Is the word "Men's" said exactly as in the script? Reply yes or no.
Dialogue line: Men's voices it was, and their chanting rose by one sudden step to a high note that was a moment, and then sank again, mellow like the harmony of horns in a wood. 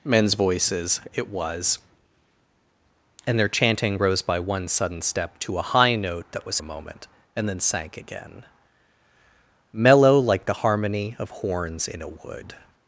yes